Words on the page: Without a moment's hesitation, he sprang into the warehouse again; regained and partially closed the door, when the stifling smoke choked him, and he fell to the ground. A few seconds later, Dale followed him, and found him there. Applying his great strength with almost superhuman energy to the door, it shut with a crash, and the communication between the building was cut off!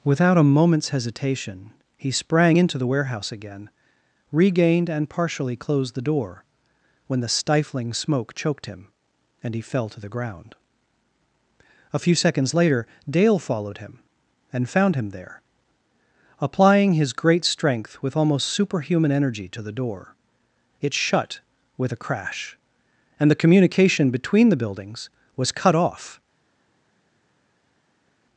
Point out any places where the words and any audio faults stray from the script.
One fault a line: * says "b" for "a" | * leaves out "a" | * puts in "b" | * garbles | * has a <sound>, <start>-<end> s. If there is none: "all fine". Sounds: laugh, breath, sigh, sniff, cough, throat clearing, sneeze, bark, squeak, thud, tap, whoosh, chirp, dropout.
* says "buildings" for "building"